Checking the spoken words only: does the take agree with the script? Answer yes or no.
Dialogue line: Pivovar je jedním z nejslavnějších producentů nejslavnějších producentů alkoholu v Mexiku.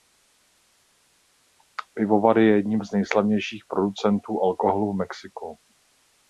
no